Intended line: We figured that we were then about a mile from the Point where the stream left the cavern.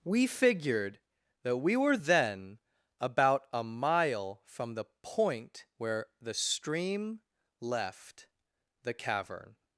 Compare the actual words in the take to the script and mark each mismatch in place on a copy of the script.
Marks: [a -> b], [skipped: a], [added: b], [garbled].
We figured that we were then about a mile from the Point where the stream left the cavern.